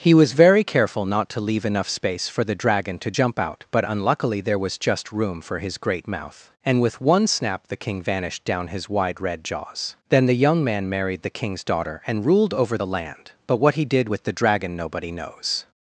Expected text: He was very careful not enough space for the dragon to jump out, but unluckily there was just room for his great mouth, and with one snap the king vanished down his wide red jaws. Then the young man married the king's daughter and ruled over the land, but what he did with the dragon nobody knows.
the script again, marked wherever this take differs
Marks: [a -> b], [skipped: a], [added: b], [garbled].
He was very careful not [added: to leave] enough space for the dragon to jump out, but unluckily there was just room for his great mouth, and with one snap the king vanished down his wide red jaws. Then the young man married the king's daughter and ruled over the land, but what he did with the dragon nobody knows.